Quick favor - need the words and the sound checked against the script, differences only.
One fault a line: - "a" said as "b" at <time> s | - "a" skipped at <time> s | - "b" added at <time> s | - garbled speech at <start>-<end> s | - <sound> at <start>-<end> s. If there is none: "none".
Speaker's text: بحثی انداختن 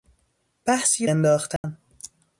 - dropout at 1.6-1.6 s